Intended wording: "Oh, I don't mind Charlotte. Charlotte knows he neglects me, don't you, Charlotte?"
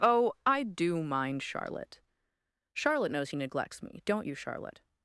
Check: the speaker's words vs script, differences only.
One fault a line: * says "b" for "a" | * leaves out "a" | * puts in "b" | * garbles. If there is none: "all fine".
* says "do" for "don't"